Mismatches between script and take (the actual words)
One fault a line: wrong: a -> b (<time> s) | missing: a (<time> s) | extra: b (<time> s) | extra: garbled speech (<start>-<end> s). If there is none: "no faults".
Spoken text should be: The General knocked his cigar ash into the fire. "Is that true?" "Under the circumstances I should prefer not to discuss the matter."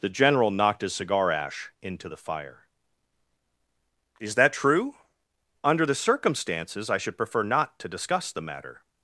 no faults